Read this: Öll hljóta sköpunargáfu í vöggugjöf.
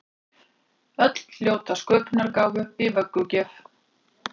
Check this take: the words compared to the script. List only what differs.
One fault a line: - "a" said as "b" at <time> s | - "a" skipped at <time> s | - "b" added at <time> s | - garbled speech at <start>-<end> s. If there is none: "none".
none